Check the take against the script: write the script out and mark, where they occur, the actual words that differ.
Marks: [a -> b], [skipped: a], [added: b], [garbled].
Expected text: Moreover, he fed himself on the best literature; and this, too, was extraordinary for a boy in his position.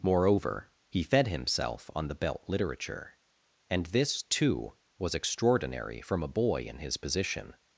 Moreover, he fed himself on the [best -> belt] literature; and this, too, was extraordinary [for -> from] a boy in his position.